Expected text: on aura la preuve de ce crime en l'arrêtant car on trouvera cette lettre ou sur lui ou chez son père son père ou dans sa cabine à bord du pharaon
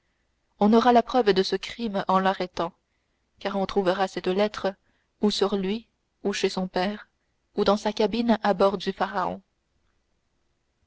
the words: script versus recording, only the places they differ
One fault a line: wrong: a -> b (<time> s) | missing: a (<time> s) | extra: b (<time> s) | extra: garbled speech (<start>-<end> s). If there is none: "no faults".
missing: son père (7.1 s)